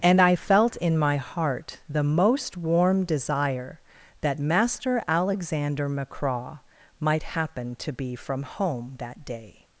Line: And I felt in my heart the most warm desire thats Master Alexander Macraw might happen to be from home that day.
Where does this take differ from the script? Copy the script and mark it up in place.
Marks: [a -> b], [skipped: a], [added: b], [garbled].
And I felt in my heart the most warm desire [thats -> that] Master Alexander Macraw might happen to be from home that day.